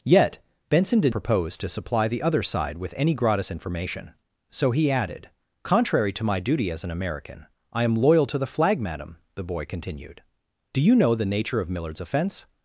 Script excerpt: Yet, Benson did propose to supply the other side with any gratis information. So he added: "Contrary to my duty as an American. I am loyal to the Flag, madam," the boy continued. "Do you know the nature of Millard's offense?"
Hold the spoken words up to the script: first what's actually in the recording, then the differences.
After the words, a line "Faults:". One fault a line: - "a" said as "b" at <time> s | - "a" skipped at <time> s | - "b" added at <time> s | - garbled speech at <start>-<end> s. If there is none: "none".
Yet, Benson did propose to supply the other side with any gratis information. So he added: "Contrary to my duty as an American. I am loyal to the Flag, madam," the boy continued. "Do you know the nature of Millard's offense?"
Faults:
none